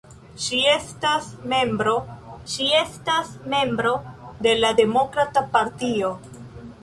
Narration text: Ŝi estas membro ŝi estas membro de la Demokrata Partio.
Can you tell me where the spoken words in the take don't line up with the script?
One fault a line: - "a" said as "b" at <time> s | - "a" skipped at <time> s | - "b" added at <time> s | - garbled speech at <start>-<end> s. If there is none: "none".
none